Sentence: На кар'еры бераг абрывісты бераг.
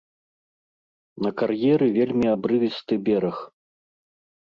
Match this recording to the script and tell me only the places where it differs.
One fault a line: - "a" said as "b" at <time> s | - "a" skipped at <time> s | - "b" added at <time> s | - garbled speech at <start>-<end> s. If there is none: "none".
- "бераг" said as "вельмі" at 2.0 s